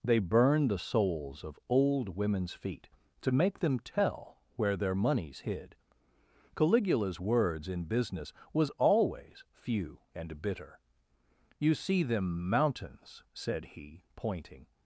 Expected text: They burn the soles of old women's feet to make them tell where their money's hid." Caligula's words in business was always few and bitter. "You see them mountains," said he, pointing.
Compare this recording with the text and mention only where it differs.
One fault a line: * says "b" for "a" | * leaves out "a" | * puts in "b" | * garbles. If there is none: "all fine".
all fine